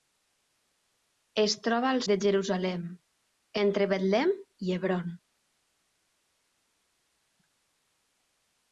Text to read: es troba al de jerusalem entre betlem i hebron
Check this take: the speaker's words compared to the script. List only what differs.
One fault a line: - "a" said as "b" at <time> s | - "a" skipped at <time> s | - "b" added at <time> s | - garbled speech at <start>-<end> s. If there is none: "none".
none